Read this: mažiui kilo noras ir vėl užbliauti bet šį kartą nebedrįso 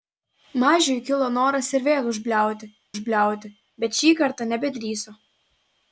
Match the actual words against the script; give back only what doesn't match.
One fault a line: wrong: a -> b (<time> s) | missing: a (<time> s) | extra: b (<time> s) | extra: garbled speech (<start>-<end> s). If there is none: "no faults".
extra: užbliauti (2.9 s)